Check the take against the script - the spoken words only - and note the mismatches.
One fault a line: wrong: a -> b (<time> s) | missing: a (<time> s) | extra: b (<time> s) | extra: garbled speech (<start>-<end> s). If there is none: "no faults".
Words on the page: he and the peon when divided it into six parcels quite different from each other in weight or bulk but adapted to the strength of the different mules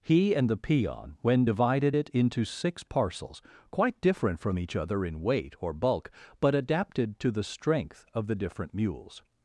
no faults